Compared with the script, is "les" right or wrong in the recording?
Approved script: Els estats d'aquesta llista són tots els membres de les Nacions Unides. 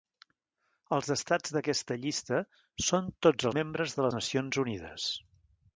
wrong